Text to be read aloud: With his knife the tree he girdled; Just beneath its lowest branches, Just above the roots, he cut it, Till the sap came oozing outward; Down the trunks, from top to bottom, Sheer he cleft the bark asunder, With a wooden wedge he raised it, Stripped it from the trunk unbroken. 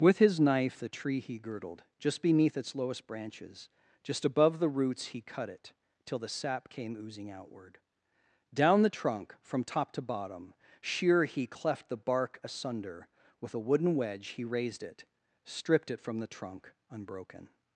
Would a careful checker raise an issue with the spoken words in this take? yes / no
yes